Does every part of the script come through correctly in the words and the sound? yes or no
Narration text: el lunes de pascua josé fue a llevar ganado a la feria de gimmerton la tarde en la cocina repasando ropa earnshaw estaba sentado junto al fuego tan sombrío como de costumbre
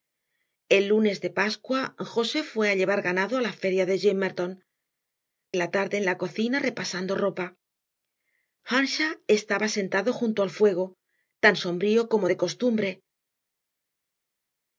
yes